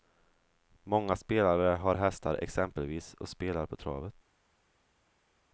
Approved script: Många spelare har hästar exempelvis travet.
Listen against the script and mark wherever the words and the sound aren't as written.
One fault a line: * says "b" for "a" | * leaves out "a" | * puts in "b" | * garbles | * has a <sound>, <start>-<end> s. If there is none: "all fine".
* puts in "och spelar på"